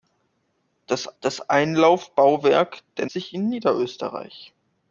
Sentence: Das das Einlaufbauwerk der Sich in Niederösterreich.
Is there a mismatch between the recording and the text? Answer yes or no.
no